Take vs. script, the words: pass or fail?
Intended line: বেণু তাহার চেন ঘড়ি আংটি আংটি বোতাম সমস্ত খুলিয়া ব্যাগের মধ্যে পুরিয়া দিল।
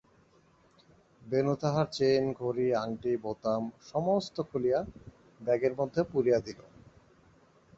fail